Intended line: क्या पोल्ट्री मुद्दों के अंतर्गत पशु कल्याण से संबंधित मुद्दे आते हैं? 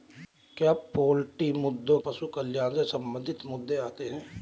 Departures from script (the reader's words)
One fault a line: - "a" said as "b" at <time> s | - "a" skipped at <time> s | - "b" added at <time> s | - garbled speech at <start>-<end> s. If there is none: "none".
- "के अंतर्गत" skipped at 2.0 s